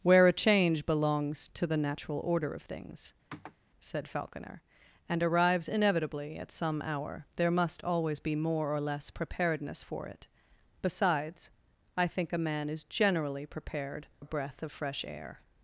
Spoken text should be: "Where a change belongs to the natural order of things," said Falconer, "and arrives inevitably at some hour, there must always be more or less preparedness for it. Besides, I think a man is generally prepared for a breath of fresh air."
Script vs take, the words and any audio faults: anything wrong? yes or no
yes